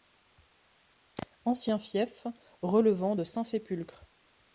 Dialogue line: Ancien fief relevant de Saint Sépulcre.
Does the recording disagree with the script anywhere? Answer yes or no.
no